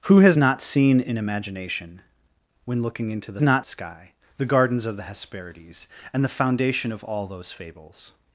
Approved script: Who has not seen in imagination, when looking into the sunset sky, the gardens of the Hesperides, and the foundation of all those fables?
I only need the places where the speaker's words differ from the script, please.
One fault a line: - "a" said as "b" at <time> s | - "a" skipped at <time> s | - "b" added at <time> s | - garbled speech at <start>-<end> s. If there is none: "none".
- "sunset" said as "not" at 3.4 s